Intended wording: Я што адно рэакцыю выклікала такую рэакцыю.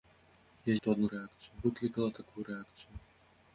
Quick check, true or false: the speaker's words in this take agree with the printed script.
true